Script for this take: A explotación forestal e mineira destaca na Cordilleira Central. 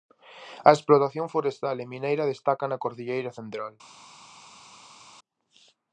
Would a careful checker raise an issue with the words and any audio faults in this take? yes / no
no